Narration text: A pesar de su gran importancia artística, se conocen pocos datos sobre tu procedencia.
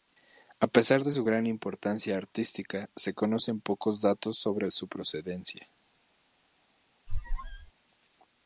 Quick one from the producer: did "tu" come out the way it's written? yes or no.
no